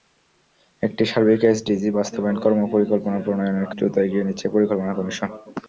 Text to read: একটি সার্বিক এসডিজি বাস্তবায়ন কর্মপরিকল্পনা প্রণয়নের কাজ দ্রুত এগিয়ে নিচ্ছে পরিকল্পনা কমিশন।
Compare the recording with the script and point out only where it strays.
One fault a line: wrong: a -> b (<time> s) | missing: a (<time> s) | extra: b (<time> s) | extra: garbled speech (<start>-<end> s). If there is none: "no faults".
missing: কাজ (3.7 s)